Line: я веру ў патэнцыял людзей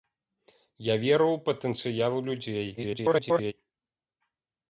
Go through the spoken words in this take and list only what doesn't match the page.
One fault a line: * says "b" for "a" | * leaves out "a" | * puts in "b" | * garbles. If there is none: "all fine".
* garbles